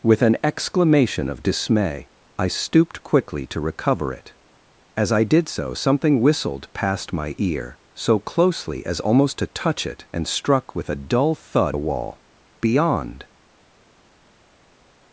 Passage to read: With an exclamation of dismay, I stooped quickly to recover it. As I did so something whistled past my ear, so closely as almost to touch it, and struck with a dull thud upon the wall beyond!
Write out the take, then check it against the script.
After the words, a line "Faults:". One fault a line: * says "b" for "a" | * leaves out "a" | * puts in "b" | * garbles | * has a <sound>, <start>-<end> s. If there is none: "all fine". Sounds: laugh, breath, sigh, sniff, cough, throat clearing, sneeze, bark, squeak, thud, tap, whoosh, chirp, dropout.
With an exclamation of dismay, I stooped quickly to recover it. As I did so something whistled past my ear, so closely as almost to touch it, and struck with a dull thud the wall beyond!
Faults:
* leaves out "upon"